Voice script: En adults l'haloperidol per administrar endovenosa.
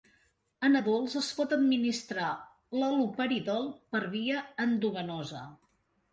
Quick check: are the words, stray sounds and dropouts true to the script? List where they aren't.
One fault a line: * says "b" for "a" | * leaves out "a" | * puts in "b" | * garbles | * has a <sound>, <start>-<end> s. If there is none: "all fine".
* puts in "es pot administrar"
* says "via" for "administrar"